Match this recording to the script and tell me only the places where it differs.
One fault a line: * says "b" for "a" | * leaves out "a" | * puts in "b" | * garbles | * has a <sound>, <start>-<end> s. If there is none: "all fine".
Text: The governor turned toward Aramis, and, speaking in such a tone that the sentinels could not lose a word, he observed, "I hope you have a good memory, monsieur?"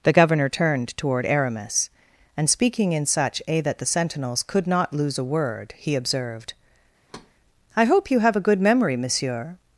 * leaves out "tone"
* has a thud, 7.1-7.3 s